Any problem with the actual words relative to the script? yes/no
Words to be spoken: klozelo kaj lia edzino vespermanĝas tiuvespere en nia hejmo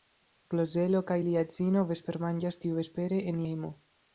yes